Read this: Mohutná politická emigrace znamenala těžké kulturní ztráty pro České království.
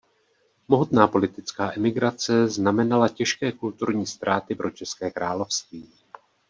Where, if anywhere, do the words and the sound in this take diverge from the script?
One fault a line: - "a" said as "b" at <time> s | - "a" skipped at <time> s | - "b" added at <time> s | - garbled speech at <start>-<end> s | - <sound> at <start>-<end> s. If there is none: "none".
none